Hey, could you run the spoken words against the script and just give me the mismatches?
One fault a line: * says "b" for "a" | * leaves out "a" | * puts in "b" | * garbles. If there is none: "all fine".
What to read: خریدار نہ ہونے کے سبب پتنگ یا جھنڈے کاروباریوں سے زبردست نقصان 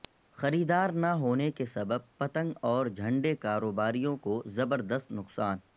* says "اور" for "یا"
* says "کو" for "سے"